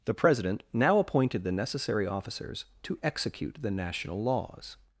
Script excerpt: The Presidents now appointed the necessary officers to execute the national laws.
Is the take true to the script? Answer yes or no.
no